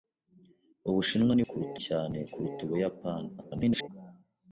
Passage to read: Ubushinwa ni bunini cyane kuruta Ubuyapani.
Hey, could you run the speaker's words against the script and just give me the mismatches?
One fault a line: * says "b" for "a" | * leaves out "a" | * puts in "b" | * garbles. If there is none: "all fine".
* says "kuruta" for "bunini"
* garbles